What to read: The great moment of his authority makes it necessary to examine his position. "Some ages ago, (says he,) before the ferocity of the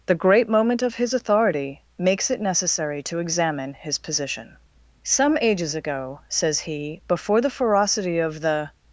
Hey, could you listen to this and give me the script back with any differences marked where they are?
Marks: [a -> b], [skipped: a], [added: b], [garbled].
The great moment of his authority makes it necessary to examine his position. "Some ages ago, (says he,) before the ferocity of the